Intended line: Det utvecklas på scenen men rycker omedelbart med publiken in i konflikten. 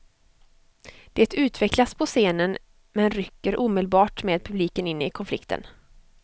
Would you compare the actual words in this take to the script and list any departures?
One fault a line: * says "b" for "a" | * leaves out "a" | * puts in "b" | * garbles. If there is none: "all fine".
all fine